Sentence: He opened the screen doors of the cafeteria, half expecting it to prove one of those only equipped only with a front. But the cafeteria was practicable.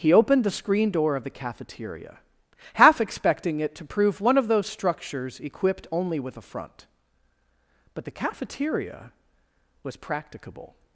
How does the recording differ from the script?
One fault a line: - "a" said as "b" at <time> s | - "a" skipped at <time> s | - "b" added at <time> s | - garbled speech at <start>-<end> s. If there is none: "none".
- "doors" said as "door" at 0.9 s
- "only" said as "structures" at 4.7 s